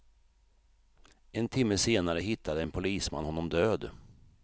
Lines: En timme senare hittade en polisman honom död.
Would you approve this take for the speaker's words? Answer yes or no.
yes